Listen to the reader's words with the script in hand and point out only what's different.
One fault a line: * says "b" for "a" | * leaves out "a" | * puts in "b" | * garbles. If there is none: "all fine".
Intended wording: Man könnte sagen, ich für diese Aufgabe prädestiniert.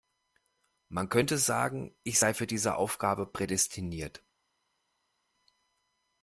* puts in "sei"